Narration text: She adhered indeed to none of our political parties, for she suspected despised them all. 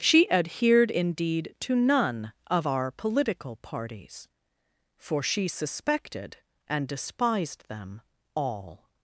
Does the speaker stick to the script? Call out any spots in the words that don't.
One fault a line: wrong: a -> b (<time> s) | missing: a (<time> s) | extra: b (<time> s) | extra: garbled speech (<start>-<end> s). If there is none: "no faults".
extra: and (6.7 s)